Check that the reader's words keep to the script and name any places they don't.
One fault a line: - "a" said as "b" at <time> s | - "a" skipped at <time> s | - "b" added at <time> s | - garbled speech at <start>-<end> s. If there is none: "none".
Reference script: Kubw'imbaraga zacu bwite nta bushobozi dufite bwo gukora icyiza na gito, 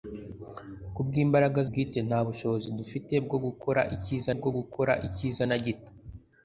- "zacu" skipped at 1.6 s
- "bwo gukora icyiza" added at 4.4 s